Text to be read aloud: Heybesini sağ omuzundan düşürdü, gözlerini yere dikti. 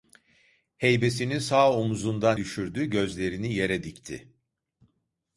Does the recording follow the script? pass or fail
pass